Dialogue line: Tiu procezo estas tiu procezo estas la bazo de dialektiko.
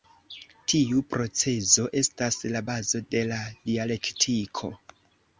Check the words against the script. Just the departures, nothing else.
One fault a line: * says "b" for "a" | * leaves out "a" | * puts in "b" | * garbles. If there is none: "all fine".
* leaves out "tiu procezo estas"
* puts in "la"